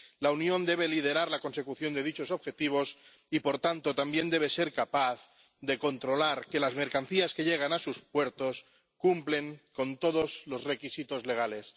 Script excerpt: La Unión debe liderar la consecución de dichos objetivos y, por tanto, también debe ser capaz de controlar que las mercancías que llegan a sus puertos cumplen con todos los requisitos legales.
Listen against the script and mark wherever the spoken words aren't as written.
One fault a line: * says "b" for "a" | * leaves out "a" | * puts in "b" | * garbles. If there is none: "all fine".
all fine